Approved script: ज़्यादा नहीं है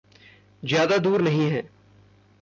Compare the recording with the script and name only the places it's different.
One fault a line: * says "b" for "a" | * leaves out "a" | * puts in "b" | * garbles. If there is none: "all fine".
* puts in "दूर"